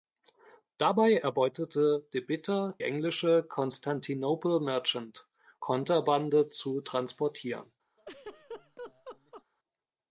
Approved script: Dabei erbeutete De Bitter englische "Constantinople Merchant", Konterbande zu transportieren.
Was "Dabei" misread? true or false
false